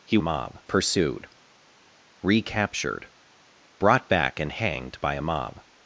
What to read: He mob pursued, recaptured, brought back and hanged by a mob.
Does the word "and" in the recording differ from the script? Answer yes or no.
no